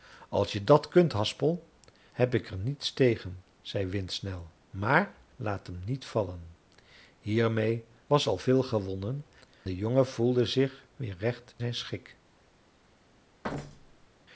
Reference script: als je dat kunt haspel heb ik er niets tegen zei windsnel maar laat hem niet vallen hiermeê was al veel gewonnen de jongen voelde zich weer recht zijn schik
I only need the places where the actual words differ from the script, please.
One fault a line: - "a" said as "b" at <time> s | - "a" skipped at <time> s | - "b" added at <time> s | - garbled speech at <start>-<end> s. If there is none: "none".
none